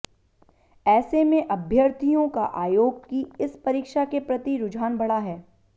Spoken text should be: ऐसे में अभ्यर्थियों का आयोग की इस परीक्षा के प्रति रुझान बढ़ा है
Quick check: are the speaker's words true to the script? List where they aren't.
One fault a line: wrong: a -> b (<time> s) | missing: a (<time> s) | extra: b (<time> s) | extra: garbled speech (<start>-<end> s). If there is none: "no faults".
no faults